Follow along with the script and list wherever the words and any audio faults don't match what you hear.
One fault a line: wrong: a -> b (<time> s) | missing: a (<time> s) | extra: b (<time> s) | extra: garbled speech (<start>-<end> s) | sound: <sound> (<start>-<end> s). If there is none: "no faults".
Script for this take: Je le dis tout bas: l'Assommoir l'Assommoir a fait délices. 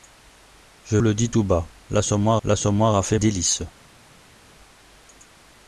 no faults